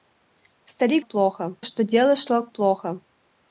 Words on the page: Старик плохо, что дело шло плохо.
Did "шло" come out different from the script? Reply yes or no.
no